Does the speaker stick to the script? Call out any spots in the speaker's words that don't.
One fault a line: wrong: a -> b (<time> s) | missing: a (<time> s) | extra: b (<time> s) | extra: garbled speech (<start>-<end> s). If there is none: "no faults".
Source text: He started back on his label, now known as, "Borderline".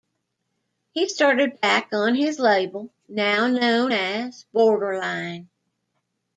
no faults